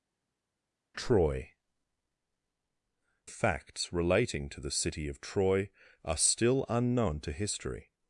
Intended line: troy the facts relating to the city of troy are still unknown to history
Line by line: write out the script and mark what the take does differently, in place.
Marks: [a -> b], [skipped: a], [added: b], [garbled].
troy [skipped: the] facts relating to the city of troy are still unknown to history